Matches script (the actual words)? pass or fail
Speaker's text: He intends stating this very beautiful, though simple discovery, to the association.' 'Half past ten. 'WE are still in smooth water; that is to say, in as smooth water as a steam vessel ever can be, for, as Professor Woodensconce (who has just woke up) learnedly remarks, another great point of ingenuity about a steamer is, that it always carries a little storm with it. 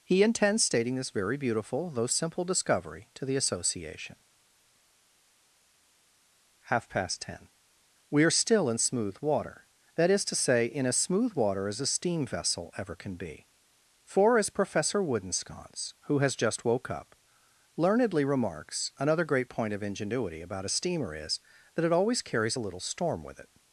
pass